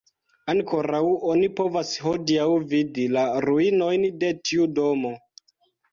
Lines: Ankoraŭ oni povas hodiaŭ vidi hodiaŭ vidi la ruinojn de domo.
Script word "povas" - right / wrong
right